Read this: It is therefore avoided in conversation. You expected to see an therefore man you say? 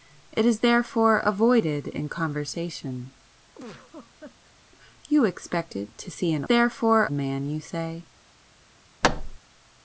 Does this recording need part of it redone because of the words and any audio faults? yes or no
yes